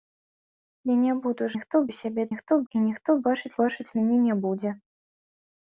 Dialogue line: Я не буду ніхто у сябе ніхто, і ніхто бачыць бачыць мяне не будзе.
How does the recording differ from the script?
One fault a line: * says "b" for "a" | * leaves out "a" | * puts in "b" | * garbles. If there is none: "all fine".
all fine